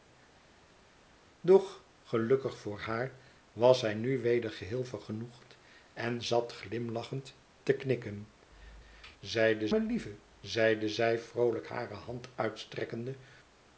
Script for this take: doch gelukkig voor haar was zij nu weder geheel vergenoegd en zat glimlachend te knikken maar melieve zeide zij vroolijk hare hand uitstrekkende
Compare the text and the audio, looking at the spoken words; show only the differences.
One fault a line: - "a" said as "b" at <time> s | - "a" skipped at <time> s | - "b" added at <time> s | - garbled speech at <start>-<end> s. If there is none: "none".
- "maar" said as "zeide" at 9.2 s